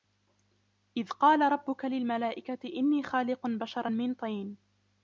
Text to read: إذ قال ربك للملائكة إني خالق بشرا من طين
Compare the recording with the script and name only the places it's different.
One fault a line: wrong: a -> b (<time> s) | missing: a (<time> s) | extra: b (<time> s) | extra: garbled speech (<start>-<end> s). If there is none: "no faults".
no faults